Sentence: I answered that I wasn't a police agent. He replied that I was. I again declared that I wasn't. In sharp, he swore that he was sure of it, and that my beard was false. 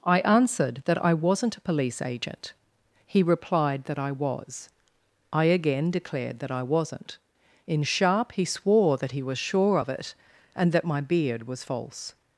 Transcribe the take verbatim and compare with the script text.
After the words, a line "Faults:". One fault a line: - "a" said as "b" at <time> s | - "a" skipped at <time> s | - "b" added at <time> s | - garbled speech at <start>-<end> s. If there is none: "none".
I answered that I wasn't a police agent. He replied that I was. I again declared that I wasn't. In sharp, he swore that he was sure of it, and that my beard was false.
Faults:
none